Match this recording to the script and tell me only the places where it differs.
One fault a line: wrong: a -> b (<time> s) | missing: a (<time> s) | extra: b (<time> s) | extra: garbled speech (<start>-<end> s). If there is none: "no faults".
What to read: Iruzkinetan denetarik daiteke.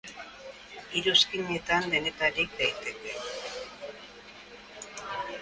no faults